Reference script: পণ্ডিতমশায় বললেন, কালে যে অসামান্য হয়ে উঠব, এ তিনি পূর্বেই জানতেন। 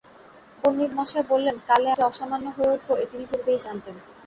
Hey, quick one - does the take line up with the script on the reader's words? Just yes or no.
yes